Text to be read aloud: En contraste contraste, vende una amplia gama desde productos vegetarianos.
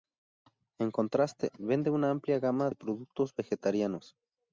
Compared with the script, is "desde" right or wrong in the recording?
wrong